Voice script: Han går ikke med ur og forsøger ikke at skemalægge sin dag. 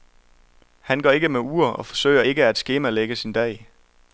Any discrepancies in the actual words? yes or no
no